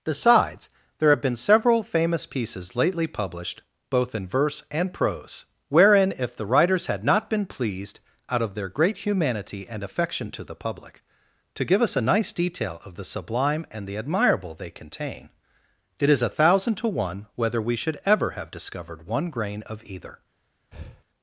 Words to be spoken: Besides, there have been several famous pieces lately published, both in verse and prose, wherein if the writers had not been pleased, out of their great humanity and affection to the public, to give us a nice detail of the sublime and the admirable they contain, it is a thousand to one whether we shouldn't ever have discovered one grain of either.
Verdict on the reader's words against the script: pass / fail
fail